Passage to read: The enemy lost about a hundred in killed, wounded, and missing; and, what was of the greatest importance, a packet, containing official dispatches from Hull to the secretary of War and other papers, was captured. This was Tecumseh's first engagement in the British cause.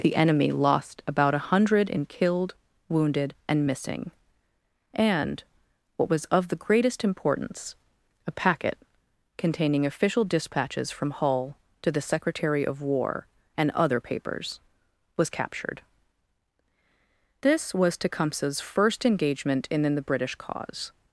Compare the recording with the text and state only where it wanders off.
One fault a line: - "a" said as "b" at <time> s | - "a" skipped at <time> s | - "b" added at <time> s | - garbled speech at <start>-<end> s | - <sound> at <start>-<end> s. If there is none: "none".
none